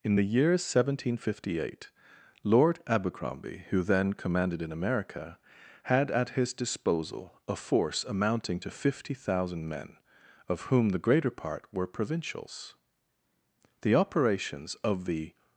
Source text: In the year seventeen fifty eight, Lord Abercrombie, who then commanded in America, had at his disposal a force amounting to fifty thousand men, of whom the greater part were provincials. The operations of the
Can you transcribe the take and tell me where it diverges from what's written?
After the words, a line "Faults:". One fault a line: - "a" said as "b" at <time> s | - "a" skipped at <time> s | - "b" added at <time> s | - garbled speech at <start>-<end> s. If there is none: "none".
In the year seventeen fifty eight, Lord Abercrombie, who then commanded in America, had at his disposal a force amounting to fifty thousand men, of whom the greater part were provincials. The operations of the
Faults:
none